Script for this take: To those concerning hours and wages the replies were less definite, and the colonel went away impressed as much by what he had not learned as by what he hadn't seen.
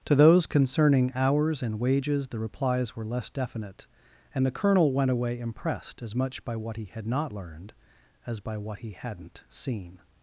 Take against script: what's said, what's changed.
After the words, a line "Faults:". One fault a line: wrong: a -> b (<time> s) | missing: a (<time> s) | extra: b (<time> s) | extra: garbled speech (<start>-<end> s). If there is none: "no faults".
To those concerning hours and wages the replies were less definite, and the colonel went away impressed as much by what he had not learned as by what he hadn't seen.
Faults:
no faults